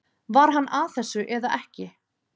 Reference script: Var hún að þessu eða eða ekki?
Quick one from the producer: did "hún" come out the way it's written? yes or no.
no